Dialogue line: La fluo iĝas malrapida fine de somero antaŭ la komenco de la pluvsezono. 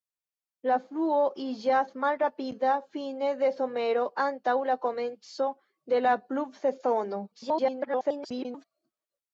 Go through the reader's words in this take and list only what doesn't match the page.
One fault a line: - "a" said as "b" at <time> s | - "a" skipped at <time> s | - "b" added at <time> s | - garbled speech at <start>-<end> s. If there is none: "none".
- garbled speech at 7.3-8.6 s